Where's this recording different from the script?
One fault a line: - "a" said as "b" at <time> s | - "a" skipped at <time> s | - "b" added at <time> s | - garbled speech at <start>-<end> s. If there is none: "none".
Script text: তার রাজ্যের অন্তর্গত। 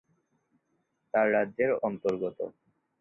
none